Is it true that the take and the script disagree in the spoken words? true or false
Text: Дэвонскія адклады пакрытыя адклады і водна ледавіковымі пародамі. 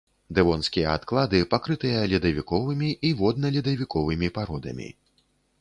true